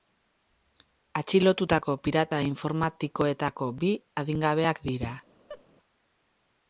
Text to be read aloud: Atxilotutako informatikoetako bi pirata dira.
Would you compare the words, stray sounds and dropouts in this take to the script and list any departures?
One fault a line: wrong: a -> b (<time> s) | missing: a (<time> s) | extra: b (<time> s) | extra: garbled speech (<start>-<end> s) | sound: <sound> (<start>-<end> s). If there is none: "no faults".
extra: pirata (2.1 s)
wrong: pirata -> adingabeak (4.2 s)
sound: laugh (5.5-5.7 s)